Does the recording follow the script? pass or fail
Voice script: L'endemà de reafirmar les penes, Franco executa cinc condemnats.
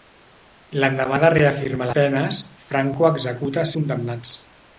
fail